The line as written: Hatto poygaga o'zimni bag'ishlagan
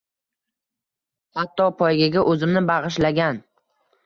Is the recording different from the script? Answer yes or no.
no